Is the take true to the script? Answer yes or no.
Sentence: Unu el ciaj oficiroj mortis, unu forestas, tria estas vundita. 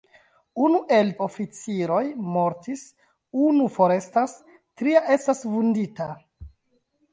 no